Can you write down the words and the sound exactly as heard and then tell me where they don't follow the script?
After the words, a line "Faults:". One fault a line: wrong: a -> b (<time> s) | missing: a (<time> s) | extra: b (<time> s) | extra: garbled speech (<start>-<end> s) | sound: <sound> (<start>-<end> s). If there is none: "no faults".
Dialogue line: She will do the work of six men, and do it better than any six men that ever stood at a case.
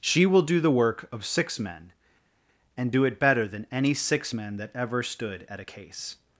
She will do the work of six men, and do it better than any six men that ever stood at a case.
Faults:
no faults